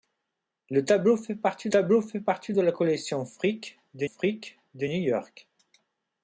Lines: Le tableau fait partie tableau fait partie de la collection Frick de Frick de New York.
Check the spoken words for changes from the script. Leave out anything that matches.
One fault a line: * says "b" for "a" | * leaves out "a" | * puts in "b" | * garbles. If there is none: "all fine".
all fine